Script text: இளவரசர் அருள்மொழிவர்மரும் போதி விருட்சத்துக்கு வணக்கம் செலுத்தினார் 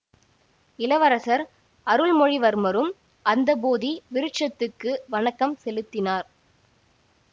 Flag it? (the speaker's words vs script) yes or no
yes